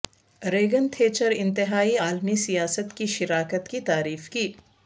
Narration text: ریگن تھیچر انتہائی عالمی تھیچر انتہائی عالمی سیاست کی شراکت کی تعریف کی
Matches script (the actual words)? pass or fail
fail